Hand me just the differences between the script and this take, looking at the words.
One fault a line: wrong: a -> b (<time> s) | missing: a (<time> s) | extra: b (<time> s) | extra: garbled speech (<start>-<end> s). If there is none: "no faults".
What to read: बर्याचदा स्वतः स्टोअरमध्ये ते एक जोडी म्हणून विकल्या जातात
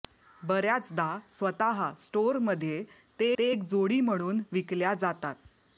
extra: ते (3.4 s)